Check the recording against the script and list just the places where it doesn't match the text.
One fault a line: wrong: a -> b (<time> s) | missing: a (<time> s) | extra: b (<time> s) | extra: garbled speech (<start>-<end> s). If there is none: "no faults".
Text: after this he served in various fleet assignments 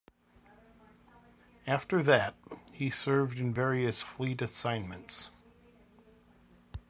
wrong: this -> that (2.0 s)